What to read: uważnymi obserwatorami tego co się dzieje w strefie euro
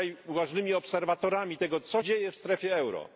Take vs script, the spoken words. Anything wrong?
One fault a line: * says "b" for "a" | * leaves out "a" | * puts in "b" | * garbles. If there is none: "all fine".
* leaves out "się"